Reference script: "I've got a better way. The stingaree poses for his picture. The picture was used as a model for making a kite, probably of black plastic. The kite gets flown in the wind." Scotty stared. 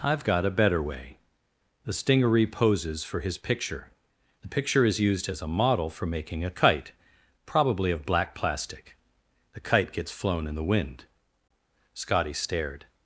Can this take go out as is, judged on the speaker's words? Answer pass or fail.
fail